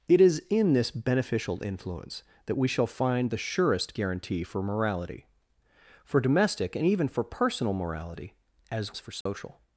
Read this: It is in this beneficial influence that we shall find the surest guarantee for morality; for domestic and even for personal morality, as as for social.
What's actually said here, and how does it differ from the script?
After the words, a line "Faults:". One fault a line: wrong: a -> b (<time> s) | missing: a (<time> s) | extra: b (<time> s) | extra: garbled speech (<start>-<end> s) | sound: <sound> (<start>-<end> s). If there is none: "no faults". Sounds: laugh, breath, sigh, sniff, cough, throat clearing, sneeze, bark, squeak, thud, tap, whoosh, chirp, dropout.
It is in this beneficial influence that we shall find the surest guarantee for morality; for domestic and even for personal morality, as as for social.
Faults:
sound: dropout (9.2-9.3 s)